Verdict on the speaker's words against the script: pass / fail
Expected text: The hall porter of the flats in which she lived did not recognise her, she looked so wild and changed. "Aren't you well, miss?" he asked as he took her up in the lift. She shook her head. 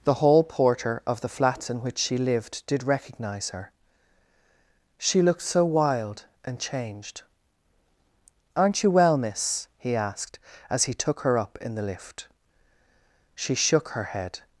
fail